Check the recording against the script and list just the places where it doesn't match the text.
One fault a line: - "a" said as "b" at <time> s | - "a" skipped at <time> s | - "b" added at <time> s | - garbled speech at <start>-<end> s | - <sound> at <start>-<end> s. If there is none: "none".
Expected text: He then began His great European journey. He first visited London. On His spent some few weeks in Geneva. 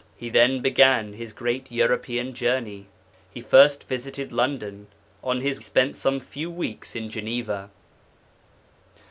none